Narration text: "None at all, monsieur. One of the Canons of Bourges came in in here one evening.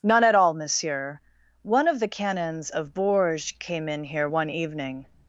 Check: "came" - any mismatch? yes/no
no